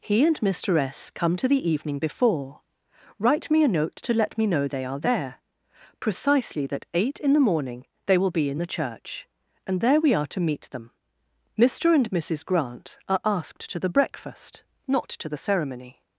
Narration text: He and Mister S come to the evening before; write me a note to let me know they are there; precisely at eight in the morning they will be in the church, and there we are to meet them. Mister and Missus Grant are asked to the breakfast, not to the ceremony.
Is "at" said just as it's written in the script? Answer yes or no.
no